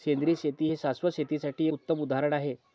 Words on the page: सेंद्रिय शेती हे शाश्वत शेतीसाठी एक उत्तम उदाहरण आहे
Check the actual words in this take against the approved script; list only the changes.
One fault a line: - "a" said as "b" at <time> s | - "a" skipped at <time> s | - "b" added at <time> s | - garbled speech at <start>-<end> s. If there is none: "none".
- "एक" skipped at 1.7 s